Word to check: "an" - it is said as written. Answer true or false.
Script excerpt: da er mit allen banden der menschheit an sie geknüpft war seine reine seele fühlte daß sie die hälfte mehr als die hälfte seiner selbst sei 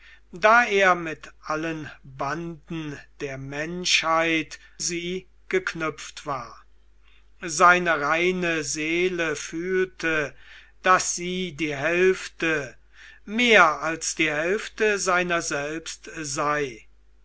false